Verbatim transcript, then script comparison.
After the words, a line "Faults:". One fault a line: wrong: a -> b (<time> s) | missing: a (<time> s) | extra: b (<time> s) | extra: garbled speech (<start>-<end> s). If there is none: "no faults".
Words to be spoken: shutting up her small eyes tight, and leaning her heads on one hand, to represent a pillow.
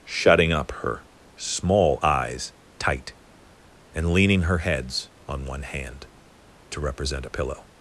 shutting up her small eyes tight, and leaning her heads on one hand, to represent a pillow.
Faults:
no faults